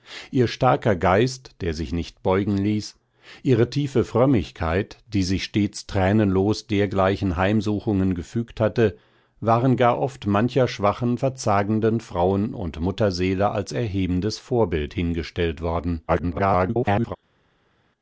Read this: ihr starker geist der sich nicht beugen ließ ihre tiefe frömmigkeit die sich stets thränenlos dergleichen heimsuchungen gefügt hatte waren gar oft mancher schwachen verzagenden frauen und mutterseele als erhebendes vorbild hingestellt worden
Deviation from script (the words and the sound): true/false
true